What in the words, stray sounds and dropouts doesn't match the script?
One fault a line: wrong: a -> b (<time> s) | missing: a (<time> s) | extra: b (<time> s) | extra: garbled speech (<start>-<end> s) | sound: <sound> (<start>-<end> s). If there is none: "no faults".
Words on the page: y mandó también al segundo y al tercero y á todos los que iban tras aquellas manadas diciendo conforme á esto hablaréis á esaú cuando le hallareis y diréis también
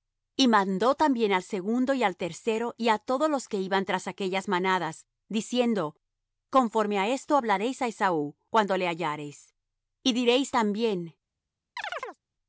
sound: chirp (11.8-12.2 s)